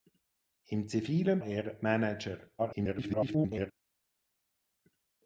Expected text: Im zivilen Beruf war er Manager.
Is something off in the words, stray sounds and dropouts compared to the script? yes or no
yes